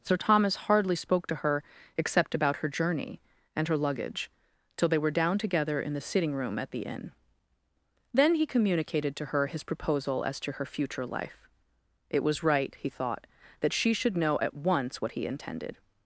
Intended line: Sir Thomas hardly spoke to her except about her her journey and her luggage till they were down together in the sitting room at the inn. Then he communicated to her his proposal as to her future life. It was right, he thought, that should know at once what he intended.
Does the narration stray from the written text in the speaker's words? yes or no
yes